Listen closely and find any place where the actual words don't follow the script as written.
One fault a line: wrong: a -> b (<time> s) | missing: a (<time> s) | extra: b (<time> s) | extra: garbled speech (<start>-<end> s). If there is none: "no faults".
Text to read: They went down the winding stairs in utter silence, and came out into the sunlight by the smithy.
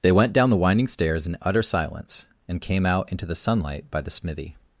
no faults